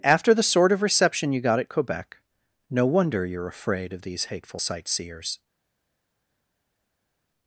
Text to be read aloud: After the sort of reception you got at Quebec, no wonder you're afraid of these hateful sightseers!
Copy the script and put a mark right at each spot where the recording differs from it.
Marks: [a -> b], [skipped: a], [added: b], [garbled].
After the sort of reception you got at Quebec, no wonder you're afraid of these hateful sightseers!